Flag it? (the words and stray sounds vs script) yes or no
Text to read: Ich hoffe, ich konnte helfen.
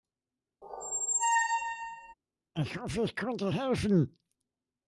yes